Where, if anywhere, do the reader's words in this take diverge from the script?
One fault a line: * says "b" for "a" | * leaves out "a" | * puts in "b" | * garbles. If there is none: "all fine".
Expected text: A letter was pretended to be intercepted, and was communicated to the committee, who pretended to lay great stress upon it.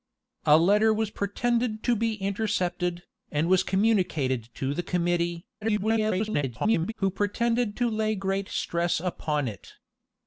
* garbles